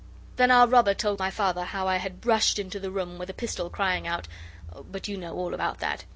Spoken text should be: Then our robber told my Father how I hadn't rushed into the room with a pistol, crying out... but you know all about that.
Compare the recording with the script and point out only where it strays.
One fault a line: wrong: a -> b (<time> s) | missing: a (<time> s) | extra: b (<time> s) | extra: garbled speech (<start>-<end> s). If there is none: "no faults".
wrong: hadn't -> had (2.0 s)